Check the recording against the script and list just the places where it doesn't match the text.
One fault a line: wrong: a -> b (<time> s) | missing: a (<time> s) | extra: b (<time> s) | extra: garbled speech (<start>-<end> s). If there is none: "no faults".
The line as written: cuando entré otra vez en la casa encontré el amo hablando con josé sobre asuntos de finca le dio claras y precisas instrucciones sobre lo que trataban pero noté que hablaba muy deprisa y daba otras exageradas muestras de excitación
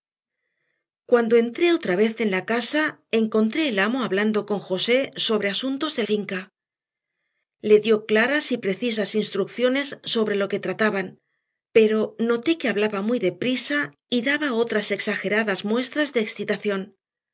no faults